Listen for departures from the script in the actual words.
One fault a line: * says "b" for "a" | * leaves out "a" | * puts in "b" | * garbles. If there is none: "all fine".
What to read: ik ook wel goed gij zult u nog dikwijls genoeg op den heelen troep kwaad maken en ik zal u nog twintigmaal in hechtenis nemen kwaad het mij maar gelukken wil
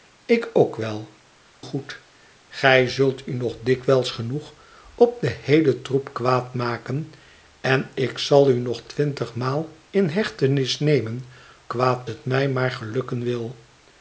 all fine